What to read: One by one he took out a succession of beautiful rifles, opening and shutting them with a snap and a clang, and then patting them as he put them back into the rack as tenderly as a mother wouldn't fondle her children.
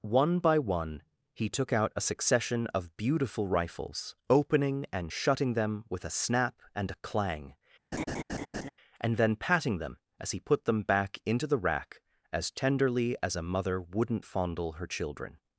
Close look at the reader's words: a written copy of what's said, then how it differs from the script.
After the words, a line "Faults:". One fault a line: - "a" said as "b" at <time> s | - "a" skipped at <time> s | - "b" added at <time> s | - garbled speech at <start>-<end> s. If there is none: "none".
One by one he took out a succession of beautiful rifles, opening and shutting them with a snap and a clang, and then patting them as he put them back into the rack as tenderly as a mother wouldn't fondle her children.
Faults:
none